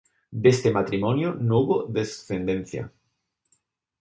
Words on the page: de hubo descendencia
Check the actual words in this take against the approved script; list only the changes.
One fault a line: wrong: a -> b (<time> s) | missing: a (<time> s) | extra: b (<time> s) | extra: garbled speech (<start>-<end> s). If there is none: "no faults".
extra: este matrimonio no (0.5 s)